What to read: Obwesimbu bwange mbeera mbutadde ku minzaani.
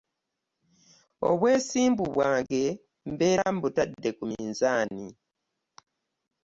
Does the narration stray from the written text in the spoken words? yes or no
no